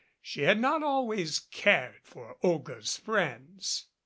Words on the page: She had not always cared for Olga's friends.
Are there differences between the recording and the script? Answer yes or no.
no